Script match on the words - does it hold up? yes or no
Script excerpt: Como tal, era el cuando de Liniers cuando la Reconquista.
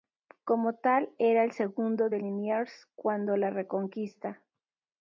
no